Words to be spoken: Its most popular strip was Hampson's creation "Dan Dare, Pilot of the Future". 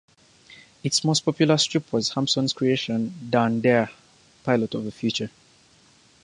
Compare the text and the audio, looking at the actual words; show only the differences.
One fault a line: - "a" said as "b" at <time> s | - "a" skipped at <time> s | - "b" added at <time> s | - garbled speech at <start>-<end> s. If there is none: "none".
none